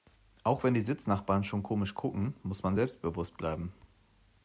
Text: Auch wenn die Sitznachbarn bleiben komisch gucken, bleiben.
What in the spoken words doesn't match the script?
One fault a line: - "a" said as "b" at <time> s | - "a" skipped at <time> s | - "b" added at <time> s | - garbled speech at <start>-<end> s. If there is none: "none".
- "bleiben" said as "schon" at 1.4 s
- "muss man selbstbewusst" added at 2.4 s